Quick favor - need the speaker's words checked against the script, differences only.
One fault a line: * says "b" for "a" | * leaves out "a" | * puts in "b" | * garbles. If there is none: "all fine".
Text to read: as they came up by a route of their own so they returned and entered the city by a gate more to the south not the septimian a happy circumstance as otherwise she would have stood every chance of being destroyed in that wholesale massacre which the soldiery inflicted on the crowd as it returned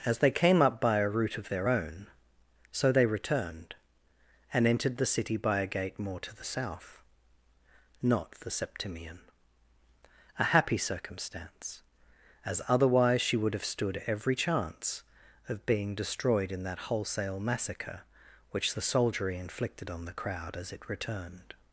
all fine